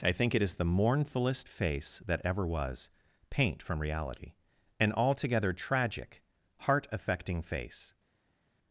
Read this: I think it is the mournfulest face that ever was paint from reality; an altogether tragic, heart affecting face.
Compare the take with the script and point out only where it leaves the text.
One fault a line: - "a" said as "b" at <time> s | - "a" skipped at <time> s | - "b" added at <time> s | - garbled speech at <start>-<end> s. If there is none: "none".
none